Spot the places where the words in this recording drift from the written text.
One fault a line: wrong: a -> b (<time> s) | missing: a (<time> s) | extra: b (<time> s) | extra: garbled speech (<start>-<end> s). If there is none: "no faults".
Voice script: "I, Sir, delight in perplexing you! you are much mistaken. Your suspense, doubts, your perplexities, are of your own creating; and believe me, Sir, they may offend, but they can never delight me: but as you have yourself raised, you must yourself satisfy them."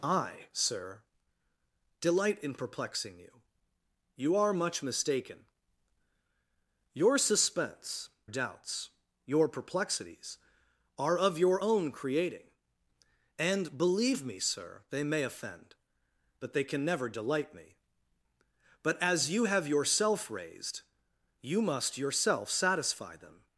no faults